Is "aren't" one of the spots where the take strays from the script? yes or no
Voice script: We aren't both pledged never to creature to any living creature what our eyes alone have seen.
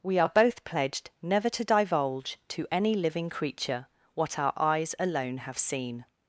yes